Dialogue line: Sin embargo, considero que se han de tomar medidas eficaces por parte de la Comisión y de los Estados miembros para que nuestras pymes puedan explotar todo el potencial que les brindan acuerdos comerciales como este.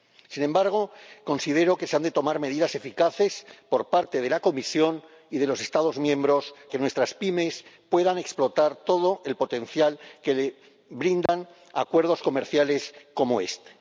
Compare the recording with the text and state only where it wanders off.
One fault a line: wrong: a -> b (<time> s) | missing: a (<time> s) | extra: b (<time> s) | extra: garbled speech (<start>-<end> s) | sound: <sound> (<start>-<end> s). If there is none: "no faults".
missing: para (6.5 s)
sound: dropout (11.3-11.3 s)